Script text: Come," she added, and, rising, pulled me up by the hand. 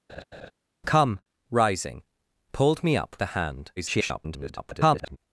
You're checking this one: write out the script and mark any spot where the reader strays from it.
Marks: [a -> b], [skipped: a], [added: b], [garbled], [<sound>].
[laugh] Come," [skipped: she added, and,] rising, pulled me up [skipped: by] the hand. [garbled]